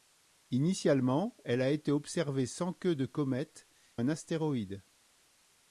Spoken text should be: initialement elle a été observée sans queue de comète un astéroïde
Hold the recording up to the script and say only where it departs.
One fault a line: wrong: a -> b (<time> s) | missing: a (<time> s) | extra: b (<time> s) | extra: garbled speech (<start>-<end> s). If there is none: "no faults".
no faults